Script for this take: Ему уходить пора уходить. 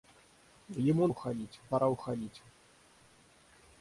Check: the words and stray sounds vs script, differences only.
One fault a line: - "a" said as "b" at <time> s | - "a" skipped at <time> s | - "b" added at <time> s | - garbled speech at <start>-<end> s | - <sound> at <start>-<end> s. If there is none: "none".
none